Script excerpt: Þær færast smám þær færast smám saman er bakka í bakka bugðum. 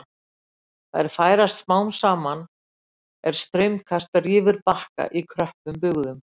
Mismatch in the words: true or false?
true